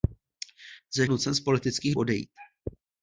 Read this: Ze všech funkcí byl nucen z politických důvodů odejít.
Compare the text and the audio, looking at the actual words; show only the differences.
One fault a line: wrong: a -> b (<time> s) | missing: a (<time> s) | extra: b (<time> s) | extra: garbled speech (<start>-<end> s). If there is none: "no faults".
missing: všech funkcí byl (1.1 s)
missing: důvodů (2.0 s)